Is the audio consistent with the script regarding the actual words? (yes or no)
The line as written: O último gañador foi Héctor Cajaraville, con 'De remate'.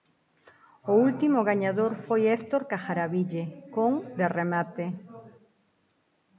yes